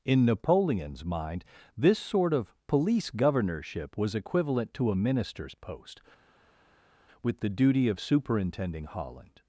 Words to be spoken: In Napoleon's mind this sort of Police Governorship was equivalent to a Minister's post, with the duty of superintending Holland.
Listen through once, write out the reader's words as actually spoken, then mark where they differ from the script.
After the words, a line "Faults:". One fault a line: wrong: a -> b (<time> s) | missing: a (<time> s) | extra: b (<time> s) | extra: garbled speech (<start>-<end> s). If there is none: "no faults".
In Napoleon's mind this sort of Police Governorship was equivalent to a Minister's post, with the duty of superintending Holland.
Faults:
no faults